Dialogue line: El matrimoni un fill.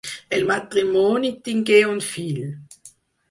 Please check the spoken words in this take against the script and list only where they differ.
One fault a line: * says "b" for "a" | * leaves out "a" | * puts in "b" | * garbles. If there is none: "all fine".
* puts in "tingué"